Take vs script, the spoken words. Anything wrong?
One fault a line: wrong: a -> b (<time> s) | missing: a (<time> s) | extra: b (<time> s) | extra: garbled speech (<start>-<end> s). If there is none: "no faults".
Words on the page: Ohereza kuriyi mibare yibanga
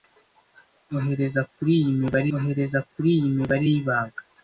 extra: ohereza kuriyi mibare (2.3 s)